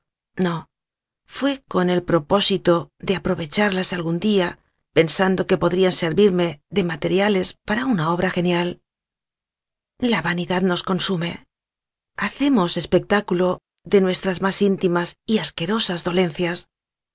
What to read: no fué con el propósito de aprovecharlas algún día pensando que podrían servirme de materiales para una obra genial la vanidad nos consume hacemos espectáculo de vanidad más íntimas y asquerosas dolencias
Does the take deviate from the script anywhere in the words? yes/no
yes